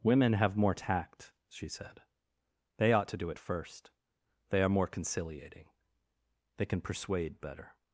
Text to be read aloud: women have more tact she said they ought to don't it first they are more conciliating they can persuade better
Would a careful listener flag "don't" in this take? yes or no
yes